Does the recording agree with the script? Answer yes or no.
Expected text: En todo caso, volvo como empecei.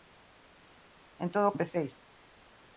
no